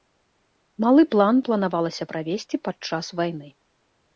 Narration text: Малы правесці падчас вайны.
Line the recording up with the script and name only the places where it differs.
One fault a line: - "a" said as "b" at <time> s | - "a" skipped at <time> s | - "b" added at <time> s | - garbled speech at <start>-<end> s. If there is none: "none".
- "план планавалася" added at 1.1 s